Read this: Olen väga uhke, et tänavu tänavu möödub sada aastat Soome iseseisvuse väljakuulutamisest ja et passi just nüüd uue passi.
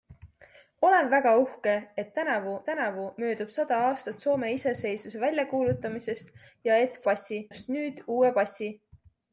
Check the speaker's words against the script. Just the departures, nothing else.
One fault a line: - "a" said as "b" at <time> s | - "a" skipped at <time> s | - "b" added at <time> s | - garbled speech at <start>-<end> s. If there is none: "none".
none